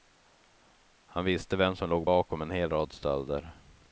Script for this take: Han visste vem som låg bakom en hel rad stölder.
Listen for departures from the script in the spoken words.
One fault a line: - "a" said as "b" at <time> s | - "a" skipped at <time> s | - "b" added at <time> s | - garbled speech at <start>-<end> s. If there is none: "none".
none